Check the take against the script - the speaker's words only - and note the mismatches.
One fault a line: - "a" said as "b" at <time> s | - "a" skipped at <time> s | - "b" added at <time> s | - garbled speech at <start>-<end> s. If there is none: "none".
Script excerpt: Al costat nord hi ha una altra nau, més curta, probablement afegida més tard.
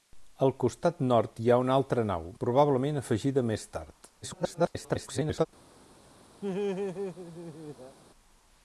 - "més curta" skipped at 2.3 s
- garbled speech at 4.2-5.5 s